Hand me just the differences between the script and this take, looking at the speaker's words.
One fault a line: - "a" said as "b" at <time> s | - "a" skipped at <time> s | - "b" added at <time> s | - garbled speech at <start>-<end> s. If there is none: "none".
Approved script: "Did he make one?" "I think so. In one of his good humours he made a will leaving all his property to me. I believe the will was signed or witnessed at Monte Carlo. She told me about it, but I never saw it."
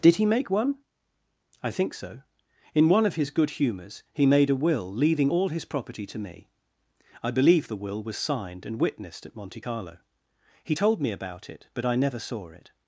- "or" said as "and" at 8.6 s
- "She" said as "He" at 10.6 s